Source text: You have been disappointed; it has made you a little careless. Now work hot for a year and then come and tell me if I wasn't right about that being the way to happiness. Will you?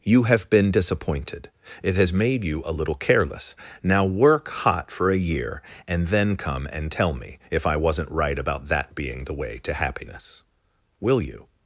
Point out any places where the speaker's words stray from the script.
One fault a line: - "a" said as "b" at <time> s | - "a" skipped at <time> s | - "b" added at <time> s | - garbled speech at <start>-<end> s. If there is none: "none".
none